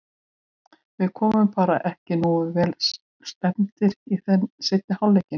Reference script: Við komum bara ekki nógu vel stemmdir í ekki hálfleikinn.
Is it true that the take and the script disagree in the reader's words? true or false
true